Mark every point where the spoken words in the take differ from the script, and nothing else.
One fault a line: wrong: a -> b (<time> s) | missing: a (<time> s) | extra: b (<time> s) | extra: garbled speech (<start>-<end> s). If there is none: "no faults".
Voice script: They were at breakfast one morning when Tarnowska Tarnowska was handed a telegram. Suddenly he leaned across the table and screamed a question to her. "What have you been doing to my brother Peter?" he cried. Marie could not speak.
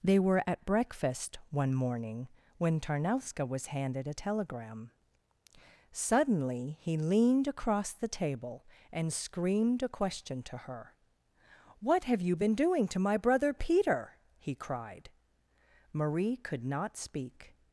missing: Tarnowska (3.5 s)